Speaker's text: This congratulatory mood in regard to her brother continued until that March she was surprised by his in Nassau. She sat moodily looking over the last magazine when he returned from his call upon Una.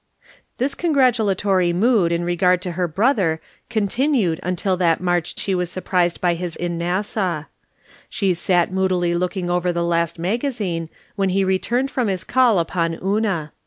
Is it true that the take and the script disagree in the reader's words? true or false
false